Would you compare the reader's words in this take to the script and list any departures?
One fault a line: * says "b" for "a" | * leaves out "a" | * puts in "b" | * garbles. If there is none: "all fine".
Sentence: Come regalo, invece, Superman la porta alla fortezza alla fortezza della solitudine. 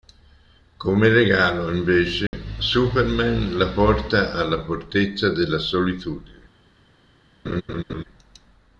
* leaves out "alla fortezza"